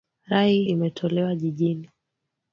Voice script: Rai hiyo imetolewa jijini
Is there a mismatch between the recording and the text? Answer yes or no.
yes